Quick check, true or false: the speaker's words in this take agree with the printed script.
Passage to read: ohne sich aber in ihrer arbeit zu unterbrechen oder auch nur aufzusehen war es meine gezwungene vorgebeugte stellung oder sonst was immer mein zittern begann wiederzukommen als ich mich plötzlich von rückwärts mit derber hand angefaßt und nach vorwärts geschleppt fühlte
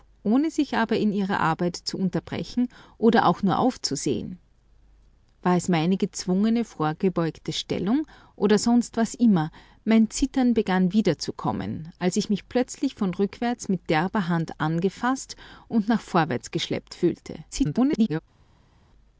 false